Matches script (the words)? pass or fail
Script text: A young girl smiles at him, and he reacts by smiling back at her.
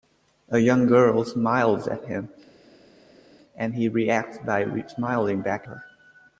fail